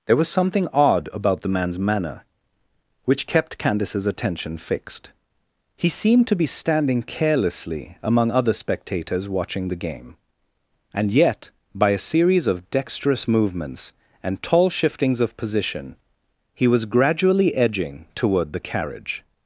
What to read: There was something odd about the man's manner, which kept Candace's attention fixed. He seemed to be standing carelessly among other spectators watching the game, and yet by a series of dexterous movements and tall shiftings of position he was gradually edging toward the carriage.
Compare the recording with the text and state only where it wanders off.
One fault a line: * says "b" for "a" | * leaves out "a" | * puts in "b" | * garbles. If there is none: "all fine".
all fine